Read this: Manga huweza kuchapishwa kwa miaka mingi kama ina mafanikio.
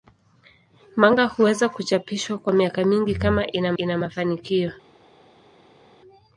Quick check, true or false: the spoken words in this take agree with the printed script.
false